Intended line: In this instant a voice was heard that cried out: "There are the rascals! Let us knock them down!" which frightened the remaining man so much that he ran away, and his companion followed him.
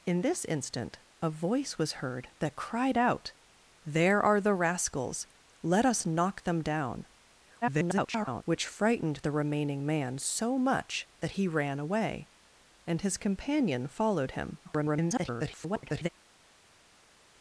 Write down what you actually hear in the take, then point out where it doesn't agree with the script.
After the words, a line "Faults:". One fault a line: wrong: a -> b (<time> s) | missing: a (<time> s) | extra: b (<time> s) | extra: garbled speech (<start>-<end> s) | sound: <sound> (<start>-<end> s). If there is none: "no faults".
In this instant a voice was heard that cried out: "There are the rascals! Let us knock them down!" [garbled] which frightened the remaining man so much that he ran away, and his companion followed him. [garbled]
Faults:
extra: garbled speech (7.6-8.4 s)
extra: garbled speech (14.6-16.1 s)